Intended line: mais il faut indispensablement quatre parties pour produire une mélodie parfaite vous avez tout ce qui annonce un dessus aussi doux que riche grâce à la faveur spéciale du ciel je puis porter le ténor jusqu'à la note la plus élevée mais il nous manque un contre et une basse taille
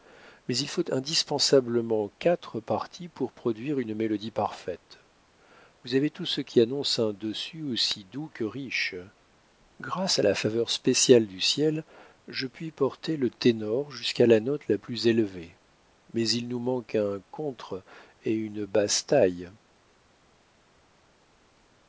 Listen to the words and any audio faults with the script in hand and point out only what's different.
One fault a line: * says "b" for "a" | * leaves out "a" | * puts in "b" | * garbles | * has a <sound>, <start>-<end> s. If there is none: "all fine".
all fine